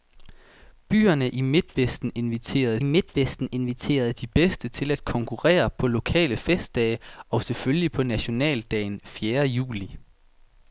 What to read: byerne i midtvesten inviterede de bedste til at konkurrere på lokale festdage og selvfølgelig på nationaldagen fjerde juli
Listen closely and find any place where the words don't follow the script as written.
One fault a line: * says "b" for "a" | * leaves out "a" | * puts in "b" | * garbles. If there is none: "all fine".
* puts in "midtvesten inviterede"